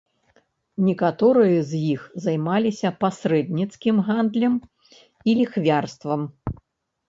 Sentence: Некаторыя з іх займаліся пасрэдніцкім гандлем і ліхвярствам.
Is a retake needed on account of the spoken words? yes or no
no